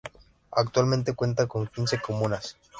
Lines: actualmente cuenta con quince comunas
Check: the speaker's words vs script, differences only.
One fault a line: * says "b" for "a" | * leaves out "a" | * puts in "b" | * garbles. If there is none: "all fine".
all fine